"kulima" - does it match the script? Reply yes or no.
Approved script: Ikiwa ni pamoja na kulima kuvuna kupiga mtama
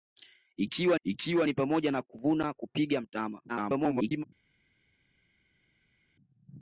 no